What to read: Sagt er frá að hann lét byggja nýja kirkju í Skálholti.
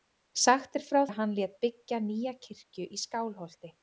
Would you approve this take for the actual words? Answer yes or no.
yes